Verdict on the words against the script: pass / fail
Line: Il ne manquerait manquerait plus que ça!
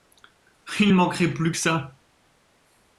fail